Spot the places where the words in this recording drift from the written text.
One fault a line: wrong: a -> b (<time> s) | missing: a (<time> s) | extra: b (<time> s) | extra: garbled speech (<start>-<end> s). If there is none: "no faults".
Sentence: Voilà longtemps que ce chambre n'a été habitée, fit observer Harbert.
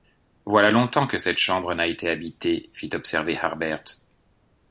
wrong: ce -> cette (1.2 s)